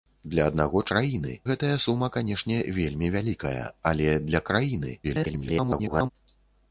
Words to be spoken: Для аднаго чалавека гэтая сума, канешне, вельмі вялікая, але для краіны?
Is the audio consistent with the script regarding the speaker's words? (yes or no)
no